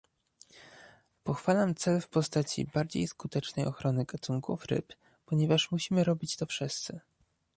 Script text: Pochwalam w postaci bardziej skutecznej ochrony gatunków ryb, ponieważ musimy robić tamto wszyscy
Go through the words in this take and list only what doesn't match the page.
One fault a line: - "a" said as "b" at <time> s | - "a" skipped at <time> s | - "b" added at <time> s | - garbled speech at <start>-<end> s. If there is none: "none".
- "cel" added at 1.8 s
- "tamto" said as "to" at 6.4 s